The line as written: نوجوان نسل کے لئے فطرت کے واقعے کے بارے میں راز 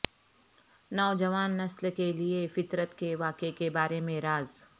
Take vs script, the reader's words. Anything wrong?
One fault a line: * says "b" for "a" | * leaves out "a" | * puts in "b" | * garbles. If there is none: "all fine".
all fine